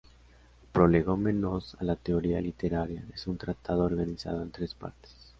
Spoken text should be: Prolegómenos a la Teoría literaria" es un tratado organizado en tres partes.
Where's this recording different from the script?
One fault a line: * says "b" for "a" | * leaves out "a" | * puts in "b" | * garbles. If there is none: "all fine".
all fine